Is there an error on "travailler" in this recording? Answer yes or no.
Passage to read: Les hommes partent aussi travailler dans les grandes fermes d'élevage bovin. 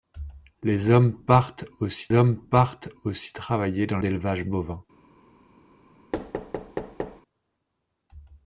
yes